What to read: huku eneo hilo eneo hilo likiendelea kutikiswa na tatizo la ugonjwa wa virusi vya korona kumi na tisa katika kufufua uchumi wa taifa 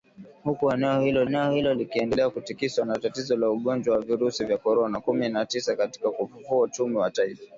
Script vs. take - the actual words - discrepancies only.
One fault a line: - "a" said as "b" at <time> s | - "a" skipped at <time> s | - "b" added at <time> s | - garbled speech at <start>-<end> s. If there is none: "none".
none